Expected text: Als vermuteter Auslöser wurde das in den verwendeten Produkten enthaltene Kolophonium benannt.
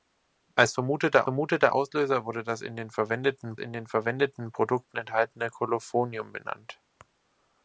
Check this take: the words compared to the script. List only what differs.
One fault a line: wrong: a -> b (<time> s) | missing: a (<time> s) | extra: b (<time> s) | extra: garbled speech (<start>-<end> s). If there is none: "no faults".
extra: vermuteter (1.2 s)
extra: in den verwendeten (3.6 s)